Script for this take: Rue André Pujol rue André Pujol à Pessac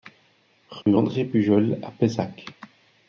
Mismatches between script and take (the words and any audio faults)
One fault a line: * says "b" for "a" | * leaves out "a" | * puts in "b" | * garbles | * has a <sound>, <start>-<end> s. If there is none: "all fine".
* has a dropout, 0.8-0.9 s
* leaves out "rue André Pujol"